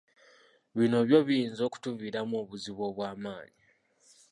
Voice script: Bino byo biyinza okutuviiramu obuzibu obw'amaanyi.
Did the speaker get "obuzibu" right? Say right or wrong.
right